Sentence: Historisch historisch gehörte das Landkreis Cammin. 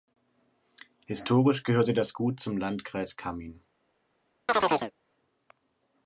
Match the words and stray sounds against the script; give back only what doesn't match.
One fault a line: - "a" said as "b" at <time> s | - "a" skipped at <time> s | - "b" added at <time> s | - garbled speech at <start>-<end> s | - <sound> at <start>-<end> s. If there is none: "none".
- "historisch" skipped at 1.6 s
- "Gut zum" added at 2.1 s
- chirp at 4.5-4.9 s